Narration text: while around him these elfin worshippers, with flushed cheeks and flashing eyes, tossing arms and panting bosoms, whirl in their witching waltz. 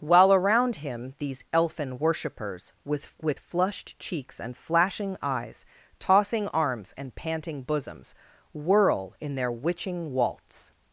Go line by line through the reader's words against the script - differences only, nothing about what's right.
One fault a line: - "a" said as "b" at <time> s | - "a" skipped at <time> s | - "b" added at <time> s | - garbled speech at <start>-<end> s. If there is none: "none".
- "with" added at 3.2 s